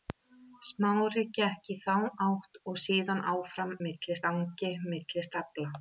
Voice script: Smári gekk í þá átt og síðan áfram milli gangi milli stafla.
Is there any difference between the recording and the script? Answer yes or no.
no